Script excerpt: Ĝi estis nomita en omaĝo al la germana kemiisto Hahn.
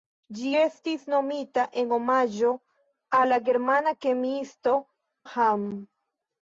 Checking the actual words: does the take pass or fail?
pass